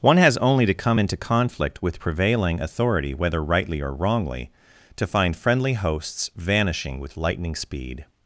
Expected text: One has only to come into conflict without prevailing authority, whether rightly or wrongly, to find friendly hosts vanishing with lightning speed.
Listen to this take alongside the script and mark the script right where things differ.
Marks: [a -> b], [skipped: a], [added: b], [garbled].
One has only to come into conflict [without -> with] prevailing authority, whether rightly or wrongly, to find friendly hosts vanishing with lightning speed.